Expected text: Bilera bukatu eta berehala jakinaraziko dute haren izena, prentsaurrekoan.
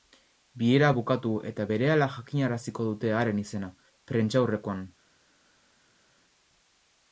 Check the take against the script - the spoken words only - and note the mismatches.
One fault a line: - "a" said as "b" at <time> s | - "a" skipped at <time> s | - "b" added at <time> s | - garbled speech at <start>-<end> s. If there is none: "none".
none